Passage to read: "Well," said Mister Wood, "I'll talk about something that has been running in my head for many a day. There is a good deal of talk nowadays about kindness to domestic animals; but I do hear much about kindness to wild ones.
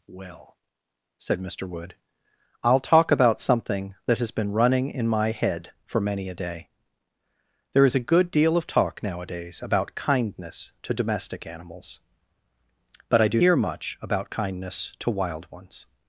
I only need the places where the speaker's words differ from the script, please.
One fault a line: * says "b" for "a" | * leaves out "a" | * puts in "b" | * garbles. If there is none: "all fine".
all fine